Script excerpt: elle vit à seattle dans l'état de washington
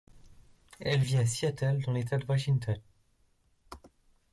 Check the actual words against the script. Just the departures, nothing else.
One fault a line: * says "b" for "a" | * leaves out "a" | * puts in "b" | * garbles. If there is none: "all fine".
all fine